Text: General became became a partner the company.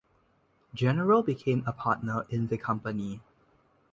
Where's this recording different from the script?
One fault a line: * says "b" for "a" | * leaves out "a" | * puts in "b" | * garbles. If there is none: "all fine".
* leaves out "became"
* puts in "in"